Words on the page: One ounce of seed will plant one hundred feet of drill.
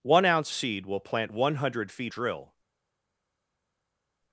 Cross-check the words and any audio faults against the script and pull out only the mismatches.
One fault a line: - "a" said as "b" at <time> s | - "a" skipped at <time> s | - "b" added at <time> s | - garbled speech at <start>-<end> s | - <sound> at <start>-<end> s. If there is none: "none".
- "of" skipped at 0.5 s
- "of" skipped at 2.1 s